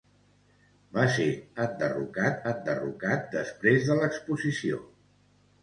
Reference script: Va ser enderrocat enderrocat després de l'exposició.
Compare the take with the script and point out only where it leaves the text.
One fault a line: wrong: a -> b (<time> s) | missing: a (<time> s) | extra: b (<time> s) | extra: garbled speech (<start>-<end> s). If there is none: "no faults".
no faults